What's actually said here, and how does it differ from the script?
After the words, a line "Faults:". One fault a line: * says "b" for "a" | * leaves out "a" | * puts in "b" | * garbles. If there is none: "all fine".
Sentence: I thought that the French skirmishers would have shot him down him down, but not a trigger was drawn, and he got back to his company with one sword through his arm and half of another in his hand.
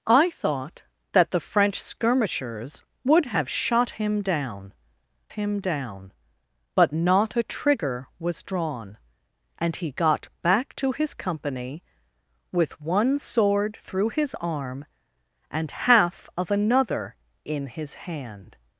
I thought that the French skirmishers would have shot him down him down, but not a trigger was drawn, and he got back to his company with one sword through his arm and half of another in his hand.
Faults:
all fine